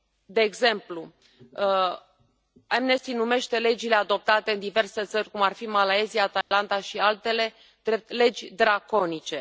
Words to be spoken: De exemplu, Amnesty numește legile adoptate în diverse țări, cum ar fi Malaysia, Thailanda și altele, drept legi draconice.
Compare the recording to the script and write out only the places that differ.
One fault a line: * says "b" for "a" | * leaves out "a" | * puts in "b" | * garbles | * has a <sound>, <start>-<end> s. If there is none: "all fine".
* has a dropout, 6.4-6.5 s